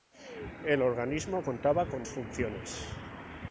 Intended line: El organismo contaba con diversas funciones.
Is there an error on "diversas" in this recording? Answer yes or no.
yes